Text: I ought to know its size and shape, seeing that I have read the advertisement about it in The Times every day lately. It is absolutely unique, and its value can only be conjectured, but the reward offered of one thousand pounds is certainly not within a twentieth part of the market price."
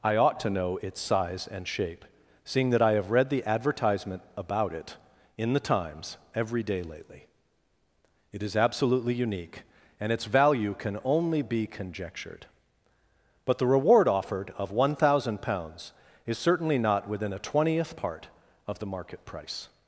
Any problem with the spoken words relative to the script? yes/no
no